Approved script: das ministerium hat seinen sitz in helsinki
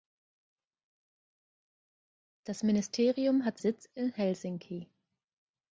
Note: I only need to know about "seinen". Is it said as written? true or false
false